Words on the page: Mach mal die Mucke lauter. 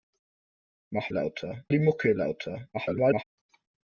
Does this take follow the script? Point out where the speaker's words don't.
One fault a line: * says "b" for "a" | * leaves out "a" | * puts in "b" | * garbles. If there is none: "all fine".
* says "lauter" for "mal"
* garbles